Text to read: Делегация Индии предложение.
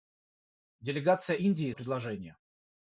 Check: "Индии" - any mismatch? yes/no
no